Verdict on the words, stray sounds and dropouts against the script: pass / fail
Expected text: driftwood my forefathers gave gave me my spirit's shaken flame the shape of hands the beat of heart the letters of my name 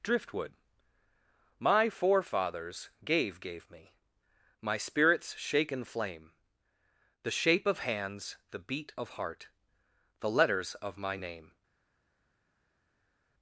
pass